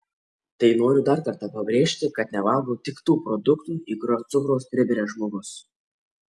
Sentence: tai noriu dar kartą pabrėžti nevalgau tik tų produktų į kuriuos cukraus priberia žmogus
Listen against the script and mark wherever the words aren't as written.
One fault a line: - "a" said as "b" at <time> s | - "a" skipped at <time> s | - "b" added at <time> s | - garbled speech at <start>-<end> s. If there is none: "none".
- "kad" added at 2.2 s